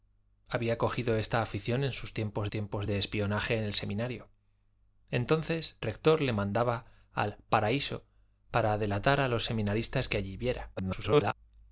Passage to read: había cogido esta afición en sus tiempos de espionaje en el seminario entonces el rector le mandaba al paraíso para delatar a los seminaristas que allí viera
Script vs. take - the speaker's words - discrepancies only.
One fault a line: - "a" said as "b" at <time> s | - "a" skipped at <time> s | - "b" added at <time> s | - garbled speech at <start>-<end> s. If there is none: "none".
- "tiempos" added at 2.5 s
- "el" skipped at 5.8 s
- garbled speech at 10.8-11.3 s